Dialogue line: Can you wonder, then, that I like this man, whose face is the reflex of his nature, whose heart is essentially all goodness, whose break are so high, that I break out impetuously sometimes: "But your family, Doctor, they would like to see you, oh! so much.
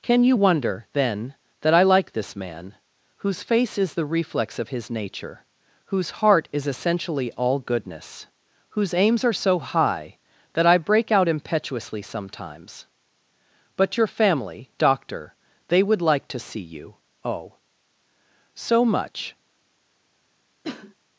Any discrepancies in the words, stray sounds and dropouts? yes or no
yes